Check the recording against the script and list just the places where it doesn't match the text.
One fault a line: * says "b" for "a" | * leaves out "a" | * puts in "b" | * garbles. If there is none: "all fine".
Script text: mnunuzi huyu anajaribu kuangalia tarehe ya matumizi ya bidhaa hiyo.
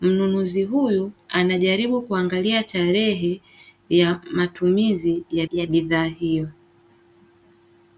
* puts in "ya"